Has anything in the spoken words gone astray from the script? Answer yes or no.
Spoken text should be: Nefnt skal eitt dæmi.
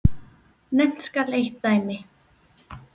no